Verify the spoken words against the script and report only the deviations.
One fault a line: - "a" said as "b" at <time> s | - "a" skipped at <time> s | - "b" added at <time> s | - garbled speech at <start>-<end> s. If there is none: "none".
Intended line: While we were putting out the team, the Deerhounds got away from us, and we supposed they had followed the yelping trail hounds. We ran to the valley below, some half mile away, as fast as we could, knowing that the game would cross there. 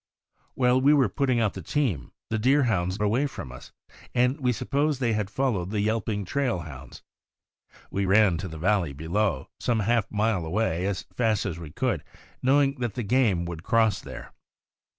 - "got" skipped at 3.0 s